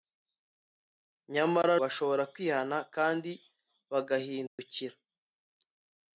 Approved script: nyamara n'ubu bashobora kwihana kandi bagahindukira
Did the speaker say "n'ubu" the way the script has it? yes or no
no